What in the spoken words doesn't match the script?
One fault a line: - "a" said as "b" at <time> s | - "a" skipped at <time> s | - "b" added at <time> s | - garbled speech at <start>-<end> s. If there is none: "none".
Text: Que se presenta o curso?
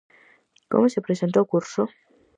- "Que" said as "Como" at 0.7 s